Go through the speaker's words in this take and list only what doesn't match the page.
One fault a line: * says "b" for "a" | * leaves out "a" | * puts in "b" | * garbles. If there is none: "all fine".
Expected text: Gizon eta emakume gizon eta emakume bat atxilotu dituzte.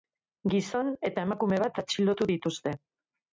* leaves out "gizon eta emakume"